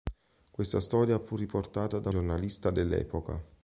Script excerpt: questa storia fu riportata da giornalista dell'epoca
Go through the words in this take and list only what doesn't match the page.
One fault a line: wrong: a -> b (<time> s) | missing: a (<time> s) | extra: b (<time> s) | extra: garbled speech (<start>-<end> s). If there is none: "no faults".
no faults